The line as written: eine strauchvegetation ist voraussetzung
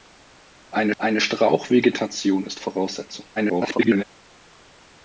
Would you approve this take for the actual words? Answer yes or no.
no